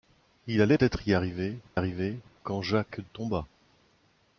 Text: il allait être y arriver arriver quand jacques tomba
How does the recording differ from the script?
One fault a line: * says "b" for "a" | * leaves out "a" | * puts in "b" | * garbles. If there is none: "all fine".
all fine